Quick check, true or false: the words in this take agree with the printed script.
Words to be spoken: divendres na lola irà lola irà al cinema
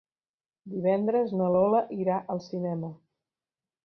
false